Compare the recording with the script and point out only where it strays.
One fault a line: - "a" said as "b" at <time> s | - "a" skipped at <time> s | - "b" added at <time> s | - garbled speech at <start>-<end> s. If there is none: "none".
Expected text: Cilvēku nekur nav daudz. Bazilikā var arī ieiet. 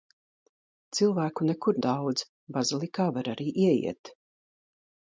- "nav" skipped at 1.8 s